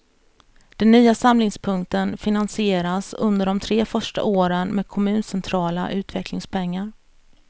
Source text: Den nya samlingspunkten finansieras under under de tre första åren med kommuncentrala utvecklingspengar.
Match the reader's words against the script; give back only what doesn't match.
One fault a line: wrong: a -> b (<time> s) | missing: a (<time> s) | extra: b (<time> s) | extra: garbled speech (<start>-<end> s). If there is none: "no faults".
missing: under (3.5 s)